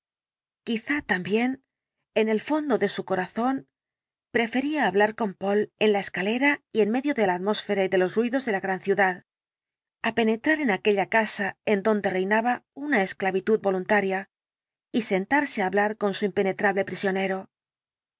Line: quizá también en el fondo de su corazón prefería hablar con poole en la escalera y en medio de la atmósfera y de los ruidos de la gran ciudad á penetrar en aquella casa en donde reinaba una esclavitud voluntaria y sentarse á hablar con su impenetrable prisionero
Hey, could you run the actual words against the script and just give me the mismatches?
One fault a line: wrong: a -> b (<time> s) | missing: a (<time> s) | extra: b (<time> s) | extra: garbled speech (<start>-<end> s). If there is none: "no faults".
no faults